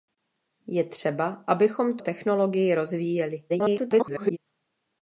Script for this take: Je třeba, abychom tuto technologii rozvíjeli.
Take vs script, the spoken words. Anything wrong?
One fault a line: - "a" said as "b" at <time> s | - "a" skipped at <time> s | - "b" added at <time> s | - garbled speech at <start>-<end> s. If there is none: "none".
- "tuto" skipped at 2.0 s
- garbled speech at 3.5-4.4 s